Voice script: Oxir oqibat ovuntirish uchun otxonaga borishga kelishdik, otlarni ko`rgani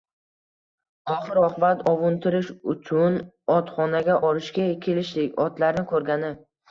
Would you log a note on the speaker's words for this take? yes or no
no